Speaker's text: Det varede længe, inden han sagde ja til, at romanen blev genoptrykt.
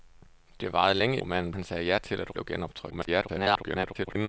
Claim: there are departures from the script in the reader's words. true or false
true